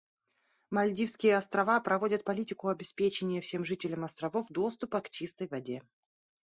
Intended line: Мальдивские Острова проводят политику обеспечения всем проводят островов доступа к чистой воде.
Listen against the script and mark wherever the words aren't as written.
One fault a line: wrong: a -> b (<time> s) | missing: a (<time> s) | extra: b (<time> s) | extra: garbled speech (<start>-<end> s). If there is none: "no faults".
wrong: проводят -> жителям (3.7 s)